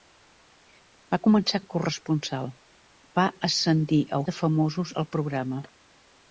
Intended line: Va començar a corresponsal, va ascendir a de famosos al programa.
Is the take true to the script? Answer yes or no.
yes